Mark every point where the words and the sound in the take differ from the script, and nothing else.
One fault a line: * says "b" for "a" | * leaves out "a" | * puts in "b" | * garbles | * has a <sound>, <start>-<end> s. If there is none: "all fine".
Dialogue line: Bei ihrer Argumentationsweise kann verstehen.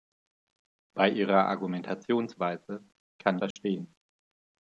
* has a dropout, 3.5-3.6 s